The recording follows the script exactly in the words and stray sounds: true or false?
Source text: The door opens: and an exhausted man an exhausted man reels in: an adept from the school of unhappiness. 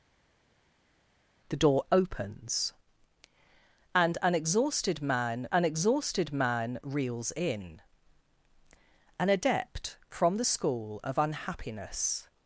true